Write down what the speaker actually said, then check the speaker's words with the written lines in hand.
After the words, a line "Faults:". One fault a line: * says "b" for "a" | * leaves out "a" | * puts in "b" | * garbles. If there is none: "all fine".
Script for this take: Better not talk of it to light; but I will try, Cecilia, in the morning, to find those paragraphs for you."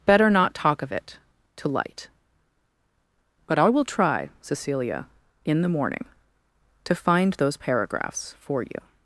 Better not talk of it to light; but I will try, Cecilia, in the morning, to find those paragraphs for you."
Faults:
all fine